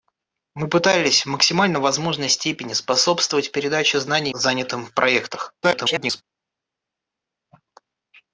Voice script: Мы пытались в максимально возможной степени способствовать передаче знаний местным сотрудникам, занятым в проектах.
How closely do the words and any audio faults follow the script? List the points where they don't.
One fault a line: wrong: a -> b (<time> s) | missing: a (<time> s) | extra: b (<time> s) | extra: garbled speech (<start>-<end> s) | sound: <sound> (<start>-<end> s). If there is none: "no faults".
missing: местным сотрудникам (4.3 s)
extra: garbled speech (5.6-6.2 s)